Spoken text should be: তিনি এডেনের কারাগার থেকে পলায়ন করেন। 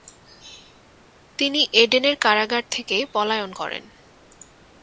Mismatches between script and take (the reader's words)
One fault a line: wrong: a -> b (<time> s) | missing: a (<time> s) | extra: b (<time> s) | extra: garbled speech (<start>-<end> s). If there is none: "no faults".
no faults